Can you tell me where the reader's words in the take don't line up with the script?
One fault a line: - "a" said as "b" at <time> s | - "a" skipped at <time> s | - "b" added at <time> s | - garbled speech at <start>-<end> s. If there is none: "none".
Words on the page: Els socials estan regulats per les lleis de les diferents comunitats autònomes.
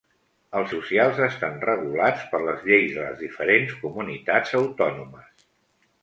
none